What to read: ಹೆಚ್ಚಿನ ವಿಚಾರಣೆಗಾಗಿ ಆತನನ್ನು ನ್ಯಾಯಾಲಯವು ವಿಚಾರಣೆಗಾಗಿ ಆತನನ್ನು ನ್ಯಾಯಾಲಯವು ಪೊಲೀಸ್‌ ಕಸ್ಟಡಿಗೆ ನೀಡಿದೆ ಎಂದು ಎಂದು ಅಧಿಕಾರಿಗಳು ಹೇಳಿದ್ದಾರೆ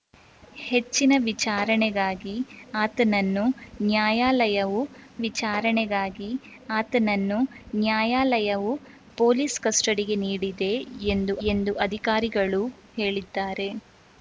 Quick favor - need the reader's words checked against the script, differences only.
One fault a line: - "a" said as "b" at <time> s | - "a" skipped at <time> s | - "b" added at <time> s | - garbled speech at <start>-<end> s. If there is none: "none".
none